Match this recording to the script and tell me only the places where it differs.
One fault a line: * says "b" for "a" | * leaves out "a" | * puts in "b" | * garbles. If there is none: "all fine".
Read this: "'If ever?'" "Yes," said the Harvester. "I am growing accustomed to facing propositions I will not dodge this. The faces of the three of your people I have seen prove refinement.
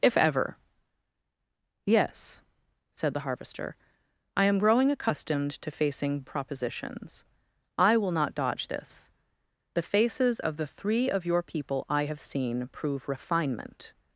all fine